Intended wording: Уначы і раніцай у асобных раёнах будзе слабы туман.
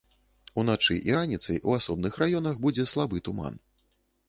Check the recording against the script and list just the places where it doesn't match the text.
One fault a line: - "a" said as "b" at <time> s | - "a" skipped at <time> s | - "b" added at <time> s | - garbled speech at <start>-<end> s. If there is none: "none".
none